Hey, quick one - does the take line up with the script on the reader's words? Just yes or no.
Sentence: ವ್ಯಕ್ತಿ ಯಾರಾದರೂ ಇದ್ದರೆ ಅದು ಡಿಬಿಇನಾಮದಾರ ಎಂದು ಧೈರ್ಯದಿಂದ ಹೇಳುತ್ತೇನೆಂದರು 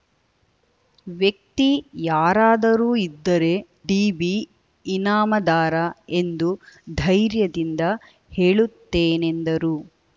no